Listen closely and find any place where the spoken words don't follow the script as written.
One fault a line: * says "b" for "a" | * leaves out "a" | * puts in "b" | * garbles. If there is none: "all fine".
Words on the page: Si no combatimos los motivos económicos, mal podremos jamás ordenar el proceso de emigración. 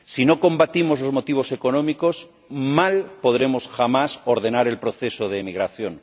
all fine